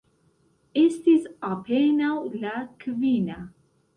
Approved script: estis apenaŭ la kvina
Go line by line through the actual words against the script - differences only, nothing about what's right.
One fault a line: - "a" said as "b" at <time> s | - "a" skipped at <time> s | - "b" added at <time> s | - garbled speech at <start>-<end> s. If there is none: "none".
none